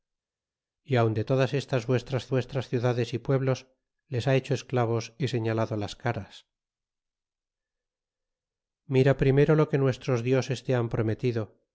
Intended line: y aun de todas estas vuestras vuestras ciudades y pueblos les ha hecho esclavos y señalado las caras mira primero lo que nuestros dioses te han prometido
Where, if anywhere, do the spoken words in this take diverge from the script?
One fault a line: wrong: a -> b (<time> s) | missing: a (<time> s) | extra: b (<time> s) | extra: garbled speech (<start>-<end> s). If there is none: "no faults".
no faults